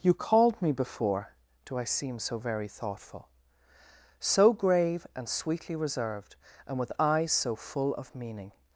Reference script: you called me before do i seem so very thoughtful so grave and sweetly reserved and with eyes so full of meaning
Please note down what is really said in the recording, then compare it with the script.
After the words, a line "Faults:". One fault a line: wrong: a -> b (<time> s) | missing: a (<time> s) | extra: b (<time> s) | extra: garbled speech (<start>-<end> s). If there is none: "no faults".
you called me before do i seem so very thoughtful so grave and sweetly reserved and with eyes so full of meaning
Faults:
no faults